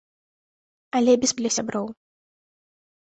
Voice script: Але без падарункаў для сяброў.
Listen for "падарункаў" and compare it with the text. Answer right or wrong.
wrong